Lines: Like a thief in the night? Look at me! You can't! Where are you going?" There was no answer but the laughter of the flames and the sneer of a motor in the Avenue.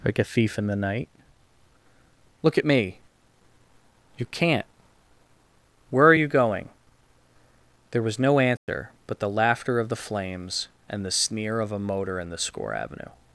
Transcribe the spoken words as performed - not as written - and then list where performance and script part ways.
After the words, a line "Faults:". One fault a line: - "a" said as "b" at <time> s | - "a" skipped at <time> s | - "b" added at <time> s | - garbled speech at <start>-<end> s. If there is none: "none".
Like a thief in the night? Look at me! You can't! Where are you going?" There was no answer but the laughter of the flames and the sneer of a motor in the score Avenue.
Faults:
- "score" added at 12.4 s